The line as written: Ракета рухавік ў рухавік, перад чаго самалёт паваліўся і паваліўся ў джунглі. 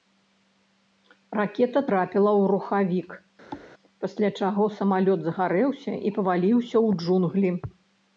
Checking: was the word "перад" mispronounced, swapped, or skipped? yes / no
yes